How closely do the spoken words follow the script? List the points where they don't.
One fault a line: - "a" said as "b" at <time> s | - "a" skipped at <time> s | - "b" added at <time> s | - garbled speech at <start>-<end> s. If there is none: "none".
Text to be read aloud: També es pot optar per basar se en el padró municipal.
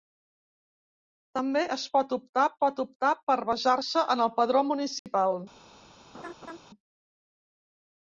- "pot optar" added at 2.6 s